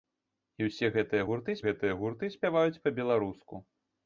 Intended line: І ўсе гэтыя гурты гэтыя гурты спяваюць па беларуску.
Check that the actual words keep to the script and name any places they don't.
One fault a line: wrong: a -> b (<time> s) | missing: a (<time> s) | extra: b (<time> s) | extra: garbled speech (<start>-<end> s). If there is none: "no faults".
no faults